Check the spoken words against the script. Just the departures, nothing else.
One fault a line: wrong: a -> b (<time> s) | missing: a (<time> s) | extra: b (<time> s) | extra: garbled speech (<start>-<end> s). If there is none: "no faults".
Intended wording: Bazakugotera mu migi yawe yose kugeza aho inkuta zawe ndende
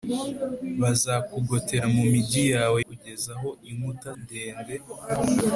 missing: yose (2.8 s)
missing: zawe (4.1 s)